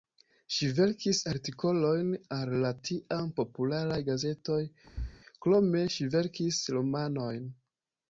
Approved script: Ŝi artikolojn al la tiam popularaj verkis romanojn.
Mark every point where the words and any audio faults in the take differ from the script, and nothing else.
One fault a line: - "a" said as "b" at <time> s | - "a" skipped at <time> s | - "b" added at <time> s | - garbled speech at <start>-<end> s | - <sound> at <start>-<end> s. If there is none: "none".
- "verkis" added at 0.8 s
- "gazetoj krome ŝi" added at 4.1 s
- thud at 4.9-5.2 s